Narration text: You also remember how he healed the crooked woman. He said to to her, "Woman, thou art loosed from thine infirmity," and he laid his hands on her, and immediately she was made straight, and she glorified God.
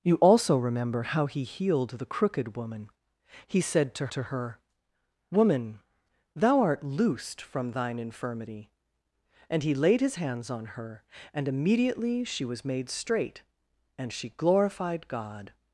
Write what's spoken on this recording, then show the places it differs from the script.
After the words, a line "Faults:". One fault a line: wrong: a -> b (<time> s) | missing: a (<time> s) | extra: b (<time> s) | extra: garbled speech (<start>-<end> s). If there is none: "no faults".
You also remember how he healed the crooked woman. He said to to her, "Woman, thou art loosed from thine infirmity," and he laid his hands on her, and immediately she was made straight, and she glorified God.
Faults:
no faults